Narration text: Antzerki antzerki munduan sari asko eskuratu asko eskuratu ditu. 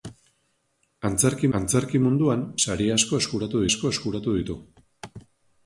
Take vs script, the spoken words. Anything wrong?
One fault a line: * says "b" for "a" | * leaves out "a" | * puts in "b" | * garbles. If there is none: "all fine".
all fine